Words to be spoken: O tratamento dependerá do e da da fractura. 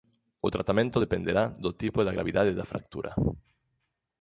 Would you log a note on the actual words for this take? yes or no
yes